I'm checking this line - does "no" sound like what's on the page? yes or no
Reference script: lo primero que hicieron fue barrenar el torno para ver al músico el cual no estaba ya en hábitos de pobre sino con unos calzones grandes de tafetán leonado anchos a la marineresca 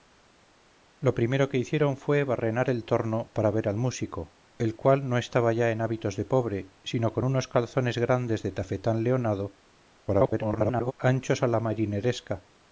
yes